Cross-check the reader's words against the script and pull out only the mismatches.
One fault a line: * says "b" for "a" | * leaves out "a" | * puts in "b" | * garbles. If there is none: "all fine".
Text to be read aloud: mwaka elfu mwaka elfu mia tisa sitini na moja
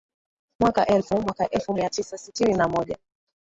all fine